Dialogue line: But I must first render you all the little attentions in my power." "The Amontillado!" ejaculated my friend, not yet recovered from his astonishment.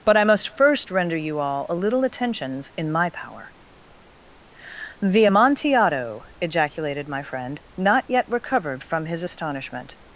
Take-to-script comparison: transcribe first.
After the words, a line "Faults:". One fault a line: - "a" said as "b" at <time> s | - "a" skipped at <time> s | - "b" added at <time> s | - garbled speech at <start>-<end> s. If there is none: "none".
But I must first render you all a little attentions in my power." "The Amontillado!" ejaculated my friend, not yet recovered from his astonishment.
Faults:
- "the" said as "a" at 1.7 s